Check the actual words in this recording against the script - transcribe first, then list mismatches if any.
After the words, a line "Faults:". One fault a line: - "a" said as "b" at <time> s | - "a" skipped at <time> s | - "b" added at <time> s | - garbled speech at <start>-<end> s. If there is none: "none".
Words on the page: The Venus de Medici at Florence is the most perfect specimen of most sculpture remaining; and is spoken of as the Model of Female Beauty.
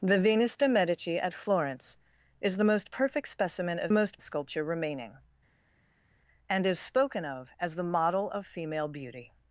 The Venus de Medici at Florence is the most perfect specimen of most sculpture remaining; and is spoken of as the Model of Female Beauty.
Faults:
none